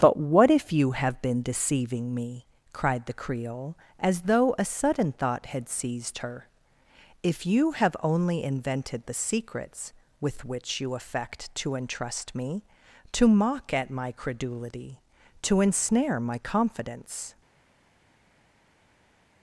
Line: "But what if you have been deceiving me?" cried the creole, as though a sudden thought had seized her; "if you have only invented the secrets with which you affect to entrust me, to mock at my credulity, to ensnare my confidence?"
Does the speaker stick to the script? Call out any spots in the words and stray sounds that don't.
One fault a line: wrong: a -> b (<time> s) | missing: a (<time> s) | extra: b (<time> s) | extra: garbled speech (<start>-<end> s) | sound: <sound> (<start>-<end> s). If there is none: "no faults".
no faults